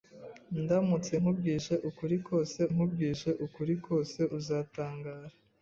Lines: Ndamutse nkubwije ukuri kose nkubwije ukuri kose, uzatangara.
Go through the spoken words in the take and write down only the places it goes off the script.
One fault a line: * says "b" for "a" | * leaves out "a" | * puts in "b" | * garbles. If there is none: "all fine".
all fine